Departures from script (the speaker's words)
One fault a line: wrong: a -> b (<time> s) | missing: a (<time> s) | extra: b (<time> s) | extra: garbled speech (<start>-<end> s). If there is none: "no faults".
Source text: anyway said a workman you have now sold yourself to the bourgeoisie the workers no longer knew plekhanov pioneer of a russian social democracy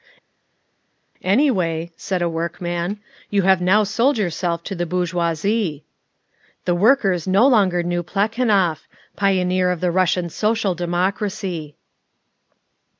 wrong: a -> the (9.8 s)